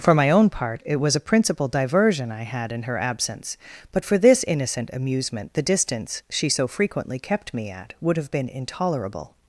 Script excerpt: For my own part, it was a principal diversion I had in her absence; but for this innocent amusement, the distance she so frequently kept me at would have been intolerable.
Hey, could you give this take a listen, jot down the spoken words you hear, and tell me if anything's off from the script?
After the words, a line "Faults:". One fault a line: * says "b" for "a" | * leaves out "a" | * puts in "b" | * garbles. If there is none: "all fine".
For my own part, it was a principal diversion I had in her absence; but for this innocent amusement, the distance she so frequently kept me at would have been intolerable.
Faults:
all fine